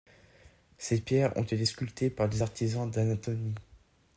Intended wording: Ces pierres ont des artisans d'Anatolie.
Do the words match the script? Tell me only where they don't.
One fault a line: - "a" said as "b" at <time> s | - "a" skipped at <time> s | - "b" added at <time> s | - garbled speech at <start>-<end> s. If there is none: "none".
- "été sculptées par" added at 1.4 s